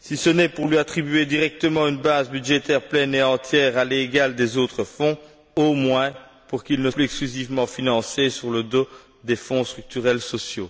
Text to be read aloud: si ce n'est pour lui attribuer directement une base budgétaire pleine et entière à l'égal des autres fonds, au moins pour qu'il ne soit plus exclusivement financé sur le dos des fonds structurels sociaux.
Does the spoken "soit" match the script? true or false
false